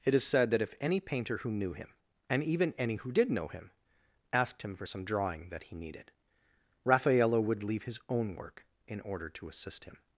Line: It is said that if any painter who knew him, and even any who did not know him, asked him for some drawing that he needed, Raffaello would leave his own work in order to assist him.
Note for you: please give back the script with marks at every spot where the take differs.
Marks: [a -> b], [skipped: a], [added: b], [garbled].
It is said that if any painter who knew him, and even any who did [skipped: not] know him, asked him for some drawing that he needed, Raffaello would leave his own work in order to assist him.